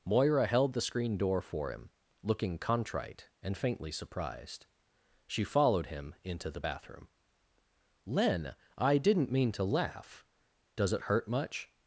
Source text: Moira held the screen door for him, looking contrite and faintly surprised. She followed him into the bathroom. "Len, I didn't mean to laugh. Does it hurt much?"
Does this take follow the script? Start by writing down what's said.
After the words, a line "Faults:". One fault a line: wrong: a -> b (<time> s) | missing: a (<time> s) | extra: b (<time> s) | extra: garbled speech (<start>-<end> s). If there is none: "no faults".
Moira held the screen door for him, looking contrite and faintly surprised. She followed him into the bathroom. "Len, I didn't mean to laugh. Does it hurt much?"
Faults:
no faults